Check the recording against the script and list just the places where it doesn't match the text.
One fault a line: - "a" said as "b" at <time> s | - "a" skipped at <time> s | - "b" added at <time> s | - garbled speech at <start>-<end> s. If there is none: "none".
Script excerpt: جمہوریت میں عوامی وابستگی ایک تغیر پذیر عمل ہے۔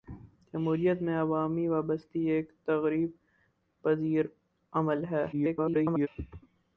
- garbled speech at 5.3-6.1 s